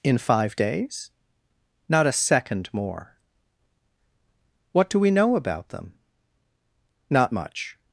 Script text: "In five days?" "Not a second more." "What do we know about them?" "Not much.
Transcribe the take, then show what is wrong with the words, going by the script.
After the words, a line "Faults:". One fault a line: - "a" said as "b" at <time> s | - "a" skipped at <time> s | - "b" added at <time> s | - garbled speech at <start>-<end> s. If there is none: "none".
"In five days?" "Not a second more." "What do we know about them?" "Not much.
Faults:
none